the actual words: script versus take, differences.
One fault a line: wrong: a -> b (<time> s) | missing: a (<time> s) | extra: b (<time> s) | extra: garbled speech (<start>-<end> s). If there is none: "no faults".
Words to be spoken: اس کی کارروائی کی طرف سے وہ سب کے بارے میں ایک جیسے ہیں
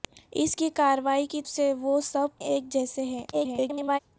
missing: طرف (1.4 s)
missing: کے بارے میں (2.4 s)
extra: garbled speech (3.3-4.0 s)